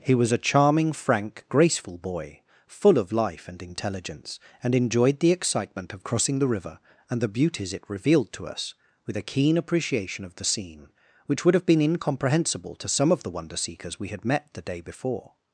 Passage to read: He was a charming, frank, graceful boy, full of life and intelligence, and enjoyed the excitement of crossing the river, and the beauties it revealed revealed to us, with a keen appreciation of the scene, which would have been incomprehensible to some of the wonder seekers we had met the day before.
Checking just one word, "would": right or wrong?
right